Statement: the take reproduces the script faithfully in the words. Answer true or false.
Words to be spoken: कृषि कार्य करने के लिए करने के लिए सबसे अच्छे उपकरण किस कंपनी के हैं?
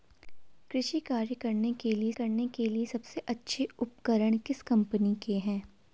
true